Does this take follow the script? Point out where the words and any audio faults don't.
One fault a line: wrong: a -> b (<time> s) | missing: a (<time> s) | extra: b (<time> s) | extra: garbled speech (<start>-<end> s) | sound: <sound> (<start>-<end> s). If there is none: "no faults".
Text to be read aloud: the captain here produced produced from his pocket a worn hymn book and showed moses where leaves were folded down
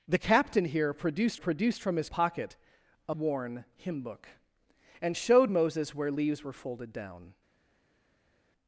no faults